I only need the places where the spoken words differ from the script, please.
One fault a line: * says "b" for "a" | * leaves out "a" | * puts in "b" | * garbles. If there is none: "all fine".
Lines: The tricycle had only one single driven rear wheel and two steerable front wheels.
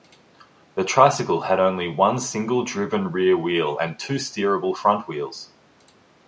all fine